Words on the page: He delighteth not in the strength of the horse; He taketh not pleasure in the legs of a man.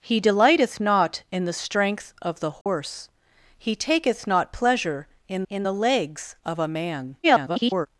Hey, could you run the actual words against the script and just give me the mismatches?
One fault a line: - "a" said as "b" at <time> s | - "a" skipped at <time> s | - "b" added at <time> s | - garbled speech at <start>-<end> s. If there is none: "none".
- "in" added at 5.5 s
- garbled speech at 7.2-7.9 s